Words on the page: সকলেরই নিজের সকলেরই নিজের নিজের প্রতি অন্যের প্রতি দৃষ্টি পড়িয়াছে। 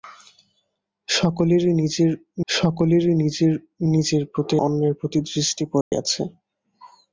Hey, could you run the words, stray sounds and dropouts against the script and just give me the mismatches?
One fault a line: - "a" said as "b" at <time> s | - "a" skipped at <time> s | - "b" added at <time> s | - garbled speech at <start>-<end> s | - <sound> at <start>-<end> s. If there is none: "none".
- dropout at 5.8-5.9 s